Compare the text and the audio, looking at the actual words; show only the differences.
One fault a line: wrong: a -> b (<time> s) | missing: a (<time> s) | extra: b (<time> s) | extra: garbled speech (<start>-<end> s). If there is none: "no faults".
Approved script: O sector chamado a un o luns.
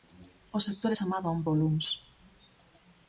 no faults